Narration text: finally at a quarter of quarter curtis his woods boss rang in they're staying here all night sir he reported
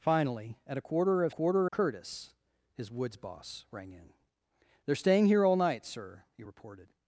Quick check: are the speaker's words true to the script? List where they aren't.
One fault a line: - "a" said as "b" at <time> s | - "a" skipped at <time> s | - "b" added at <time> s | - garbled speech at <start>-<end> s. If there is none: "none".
none